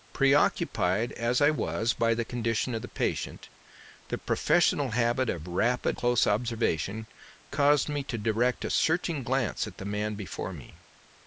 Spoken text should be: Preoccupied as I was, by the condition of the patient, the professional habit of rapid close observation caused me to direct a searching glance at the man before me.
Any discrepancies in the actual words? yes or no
no